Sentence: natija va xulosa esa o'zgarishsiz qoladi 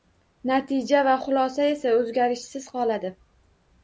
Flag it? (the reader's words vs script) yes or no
no